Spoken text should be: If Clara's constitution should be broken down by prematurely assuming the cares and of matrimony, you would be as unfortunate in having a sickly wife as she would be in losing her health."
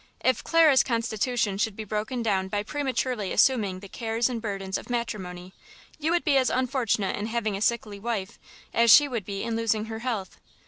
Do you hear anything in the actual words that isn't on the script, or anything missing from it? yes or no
yes